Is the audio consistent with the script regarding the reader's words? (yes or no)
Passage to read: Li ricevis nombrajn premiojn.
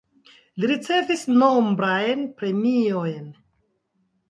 yes